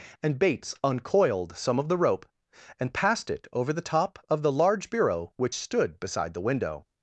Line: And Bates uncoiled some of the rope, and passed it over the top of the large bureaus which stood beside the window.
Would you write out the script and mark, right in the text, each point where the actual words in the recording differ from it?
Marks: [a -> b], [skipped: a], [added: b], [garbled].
And Bates uncoiled some of the rope, and passed it over the top of the large [bureaus -> bureau] which stood beside the window.